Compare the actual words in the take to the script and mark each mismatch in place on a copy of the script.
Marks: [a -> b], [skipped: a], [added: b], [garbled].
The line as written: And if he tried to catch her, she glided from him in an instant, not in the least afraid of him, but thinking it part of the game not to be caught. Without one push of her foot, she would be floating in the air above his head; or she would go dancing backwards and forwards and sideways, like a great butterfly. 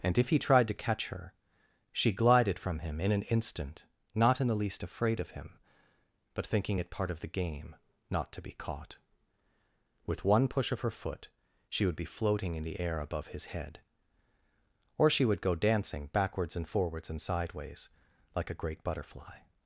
And if he tried to catch her, she glided from him in an instant, not in the least afraid of him, but thinking it part of the game not to be caught. [Without -> With] one push of her foot, she would be floating in the air above his head; or she would go dancing backwards and forwards and sideways, like a great butterfly.